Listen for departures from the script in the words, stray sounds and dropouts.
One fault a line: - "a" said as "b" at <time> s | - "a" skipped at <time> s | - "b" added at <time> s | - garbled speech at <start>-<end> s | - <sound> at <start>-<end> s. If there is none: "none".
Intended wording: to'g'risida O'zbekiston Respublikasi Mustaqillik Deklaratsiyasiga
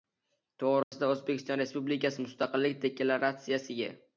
- dropout at 0.8-0.9 s